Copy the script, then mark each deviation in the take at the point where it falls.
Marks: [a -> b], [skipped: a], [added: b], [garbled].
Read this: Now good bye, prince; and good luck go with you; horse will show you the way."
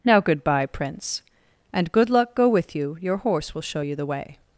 Now good bye, prince; and good luck go with you; [added: your] horse will show you the way."